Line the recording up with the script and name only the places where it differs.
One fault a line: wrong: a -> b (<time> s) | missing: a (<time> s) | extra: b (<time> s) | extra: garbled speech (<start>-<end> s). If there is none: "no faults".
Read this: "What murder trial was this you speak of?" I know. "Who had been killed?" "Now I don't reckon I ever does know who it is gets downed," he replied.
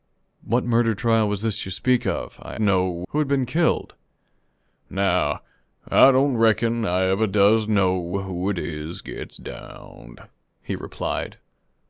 no faults